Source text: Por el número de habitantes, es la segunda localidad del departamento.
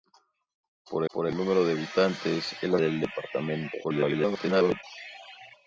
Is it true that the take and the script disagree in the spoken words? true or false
true